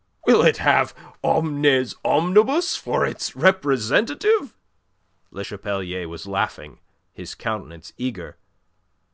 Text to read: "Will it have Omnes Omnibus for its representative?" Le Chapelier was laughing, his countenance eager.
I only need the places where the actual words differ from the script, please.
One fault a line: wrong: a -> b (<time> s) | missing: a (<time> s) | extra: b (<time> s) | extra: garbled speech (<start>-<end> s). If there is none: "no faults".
no faults